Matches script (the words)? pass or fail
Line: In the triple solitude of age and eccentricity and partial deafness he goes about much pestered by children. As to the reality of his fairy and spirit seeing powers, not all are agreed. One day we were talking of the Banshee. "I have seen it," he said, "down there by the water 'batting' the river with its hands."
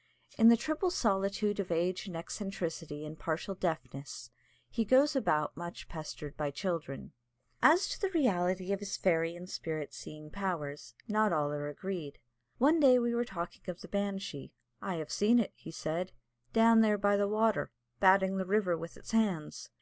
pass